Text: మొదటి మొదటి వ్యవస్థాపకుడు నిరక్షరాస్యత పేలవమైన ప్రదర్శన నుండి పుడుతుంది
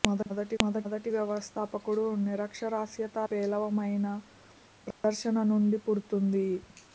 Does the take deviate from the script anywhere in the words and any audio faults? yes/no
yes